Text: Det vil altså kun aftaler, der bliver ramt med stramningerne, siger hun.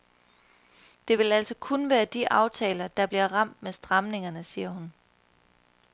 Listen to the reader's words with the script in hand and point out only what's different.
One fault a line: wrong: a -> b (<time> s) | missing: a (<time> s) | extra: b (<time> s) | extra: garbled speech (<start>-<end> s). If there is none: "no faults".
extra: være de (1.9 s)